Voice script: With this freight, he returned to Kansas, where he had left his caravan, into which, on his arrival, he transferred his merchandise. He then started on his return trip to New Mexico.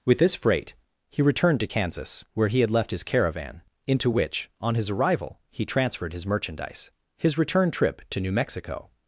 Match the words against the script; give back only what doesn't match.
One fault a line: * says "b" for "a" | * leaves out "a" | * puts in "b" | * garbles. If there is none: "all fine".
* leaves out "He then started on"